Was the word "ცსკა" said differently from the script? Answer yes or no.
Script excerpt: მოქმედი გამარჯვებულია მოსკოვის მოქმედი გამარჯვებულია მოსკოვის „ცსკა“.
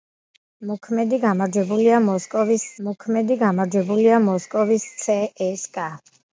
no